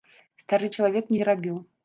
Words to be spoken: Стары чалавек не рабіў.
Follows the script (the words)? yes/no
yes